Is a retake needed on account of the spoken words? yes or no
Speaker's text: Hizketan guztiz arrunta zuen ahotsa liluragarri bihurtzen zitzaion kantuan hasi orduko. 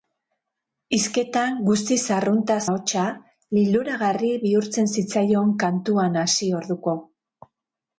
yes